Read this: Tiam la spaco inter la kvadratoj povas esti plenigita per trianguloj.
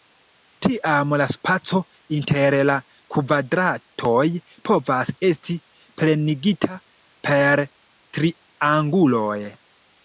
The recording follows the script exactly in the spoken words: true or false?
true